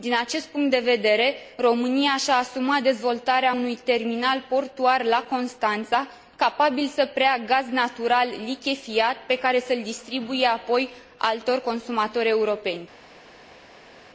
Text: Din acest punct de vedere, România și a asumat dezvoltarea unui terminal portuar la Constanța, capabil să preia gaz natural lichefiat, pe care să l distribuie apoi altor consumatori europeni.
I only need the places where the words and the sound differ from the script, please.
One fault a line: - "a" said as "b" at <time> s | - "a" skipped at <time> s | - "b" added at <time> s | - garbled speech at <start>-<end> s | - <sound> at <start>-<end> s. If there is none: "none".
none